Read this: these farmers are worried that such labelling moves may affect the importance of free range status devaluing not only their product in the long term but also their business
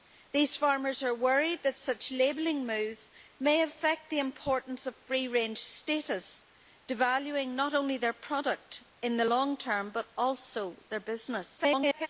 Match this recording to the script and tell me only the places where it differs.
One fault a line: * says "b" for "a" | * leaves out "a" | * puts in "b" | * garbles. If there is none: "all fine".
* garbles